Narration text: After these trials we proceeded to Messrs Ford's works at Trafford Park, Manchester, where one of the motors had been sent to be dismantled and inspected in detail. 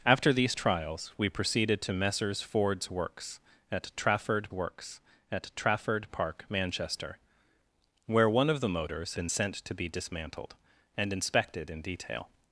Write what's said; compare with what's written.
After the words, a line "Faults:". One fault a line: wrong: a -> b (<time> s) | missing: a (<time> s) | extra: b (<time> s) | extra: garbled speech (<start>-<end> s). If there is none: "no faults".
After these trials we proceeded to Messrs Ford's works at Trafford works at Trafford Park, Manchester, where one of the motors been sent to be dismantled and inspected in detail.
Faults:
extra: works at Trafford (4.5 s)
missing: had (9.2 s)